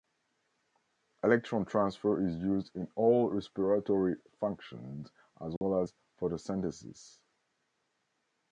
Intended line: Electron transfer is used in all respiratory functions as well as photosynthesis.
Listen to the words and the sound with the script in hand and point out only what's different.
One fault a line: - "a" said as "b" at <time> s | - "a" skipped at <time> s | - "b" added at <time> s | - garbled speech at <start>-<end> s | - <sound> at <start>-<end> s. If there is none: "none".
- dropout at 5.6-5.6 s